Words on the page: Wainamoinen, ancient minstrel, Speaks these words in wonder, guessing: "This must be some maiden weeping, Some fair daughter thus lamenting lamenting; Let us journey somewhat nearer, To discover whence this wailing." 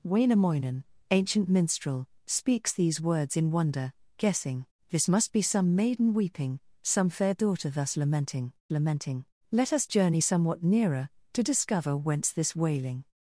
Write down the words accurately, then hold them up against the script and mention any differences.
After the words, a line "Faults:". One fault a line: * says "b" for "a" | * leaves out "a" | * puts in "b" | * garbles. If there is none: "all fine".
Wainamoinen, ancient minstrel, Speaks these words in wonder, guessing: "This must be some maiden weeping, Some fair daughter thus lamenting lamenting; Let us journey somewhat nearer, To discover whence this wailing."
Faults:
all fine